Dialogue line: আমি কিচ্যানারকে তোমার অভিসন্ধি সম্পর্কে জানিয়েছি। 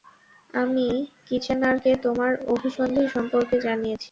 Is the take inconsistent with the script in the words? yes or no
no